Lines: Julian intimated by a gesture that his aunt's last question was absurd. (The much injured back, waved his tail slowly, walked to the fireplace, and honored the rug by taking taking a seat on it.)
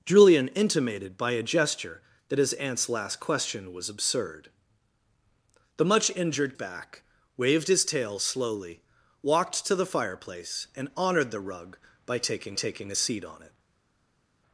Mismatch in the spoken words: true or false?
false